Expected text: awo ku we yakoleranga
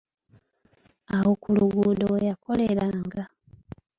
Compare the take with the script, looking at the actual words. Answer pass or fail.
fail